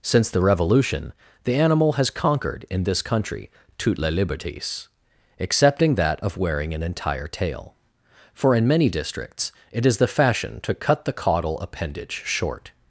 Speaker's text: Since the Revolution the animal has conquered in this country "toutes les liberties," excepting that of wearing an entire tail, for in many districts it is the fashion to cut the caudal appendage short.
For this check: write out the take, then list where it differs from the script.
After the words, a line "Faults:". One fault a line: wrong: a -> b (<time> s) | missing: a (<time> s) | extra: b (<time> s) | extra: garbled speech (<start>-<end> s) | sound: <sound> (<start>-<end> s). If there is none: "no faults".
Since the Revolution the animal has conquered in this country "toutes les liberties," excepting that of wearing an entire tail, for in many districts it is the fashion to cut the caudal appendage short.
Faults:
no faults